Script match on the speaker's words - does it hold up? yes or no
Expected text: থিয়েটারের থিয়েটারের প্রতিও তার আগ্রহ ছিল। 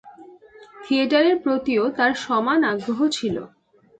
no